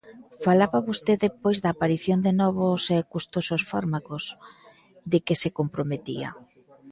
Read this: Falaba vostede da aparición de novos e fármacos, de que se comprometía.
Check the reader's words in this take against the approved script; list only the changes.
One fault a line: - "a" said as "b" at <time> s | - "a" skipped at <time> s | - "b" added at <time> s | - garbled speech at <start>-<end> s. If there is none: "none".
- "pois" added at 1.4 s
- "custosos" added at 3.1 s